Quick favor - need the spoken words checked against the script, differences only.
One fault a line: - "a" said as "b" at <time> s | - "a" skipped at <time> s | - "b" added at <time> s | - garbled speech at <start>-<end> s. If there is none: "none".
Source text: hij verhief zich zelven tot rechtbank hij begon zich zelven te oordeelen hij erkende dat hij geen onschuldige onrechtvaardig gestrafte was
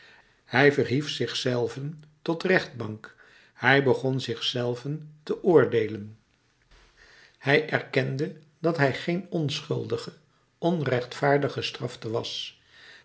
none